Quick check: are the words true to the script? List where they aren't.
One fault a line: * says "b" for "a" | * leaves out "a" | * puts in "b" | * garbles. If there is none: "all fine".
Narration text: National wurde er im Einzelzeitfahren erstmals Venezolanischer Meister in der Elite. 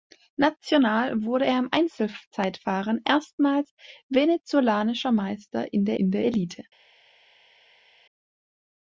* puts in "in der"